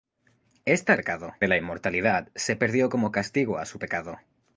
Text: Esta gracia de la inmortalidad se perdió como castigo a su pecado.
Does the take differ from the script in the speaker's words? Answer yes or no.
yes